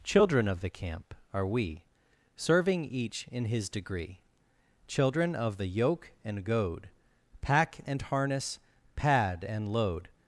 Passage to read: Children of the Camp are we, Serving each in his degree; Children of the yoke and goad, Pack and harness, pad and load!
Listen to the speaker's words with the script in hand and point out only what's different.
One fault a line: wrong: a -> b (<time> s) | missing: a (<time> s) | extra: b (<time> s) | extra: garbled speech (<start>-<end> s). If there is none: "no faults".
no faults